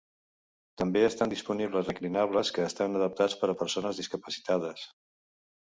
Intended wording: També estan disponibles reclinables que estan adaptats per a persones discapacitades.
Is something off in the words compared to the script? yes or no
no